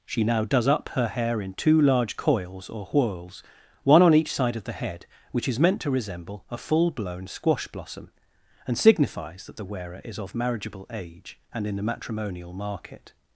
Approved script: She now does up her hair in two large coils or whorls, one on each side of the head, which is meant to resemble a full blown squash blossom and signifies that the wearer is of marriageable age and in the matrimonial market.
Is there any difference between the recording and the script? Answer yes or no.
no